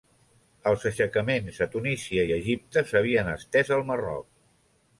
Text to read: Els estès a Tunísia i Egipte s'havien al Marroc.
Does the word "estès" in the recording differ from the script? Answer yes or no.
yes